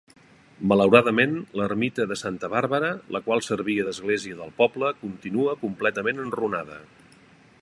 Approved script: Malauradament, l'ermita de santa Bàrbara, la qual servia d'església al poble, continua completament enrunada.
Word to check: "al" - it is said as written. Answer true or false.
false